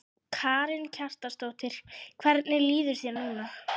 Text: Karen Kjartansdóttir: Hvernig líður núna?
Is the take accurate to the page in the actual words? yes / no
no